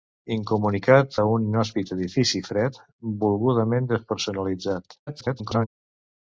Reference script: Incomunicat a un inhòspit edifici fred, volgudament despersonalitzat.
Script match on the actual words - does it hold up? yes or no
no